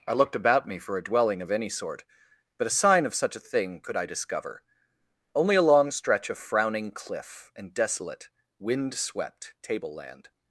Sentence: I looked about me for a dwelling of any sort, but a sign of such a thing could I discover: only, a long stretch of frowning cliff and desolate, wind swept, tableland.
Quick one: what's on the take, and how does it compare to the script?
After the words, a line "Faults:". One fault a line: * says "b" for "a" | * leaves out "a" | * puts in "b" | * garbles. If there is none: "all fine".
I looked about me for a dwelling of any sort, but a sign of such a thing could I discover: only, a long stretch of frowning cliff and desolate, wind swept, tableland.
Faults:
all fine